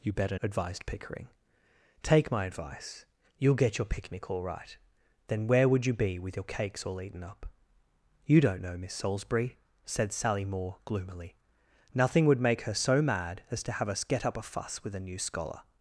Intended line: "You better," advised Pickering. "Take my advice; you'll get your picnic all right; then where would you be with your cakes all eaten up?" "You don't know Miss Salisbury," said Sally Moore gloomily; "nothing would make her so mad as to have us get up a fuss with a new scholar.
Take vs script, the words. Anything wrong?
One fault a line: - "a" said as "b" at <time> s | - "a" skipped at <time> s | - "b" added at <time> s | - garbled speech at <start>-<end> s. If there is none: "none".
none